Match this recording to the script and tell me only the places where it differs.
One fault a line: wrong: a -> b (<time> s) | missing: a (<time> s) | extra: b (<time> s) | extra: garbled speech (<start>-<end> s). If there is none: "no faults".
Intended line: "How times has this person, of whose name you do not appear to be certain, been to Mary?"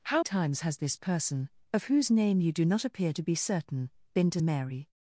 no faults